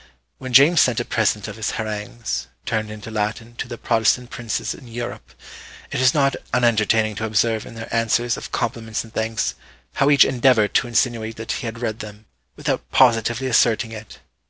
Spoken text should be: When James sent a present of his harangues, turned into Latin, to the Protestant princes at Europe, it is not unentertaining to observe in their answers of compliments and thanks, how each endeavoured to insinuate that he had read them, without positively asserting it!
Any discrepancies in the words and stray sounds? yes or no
yes